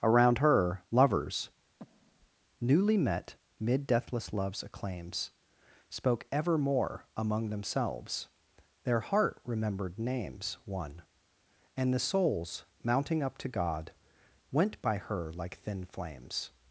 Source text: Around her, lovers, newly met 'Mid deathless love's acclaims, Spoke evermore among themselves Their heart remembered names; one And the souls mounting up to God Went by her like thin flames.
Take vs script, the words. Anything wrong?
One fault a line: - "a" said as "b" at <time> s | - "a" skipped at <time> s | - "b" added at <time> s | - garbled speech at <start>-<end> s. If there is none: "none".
none